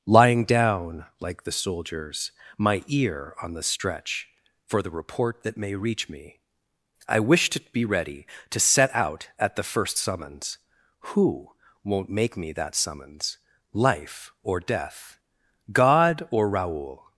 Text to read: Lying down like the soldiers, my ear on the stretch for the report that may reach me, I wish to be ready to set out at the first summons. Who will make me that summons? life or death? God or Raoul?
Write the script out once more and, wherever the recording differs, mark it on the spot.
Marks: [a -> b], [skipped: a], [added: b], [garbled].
Lying down like the soldiers, my ear on the stretch for the report that may reach me, I wish to be ready to set out at the first summons. Who [will -> won't] make me that summons? life or death? God or Raoul?